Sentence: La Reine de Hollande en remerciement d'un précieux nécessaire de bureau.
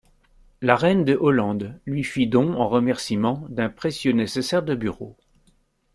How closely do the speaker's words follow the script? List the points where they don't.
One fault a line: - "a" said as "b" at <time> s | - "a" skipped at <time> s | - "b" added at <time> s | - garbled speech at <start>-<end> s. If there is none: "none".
- "lui fit don" added at 1.9 s